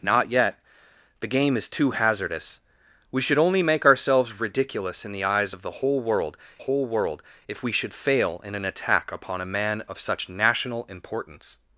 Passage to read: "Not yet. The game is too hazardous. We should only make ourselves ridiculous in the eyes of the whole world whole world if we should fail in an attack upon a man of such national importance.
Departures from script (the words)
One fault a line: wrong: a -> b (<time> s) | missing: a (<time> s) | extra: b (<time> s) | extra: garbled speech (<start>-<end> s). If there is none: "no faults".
no faults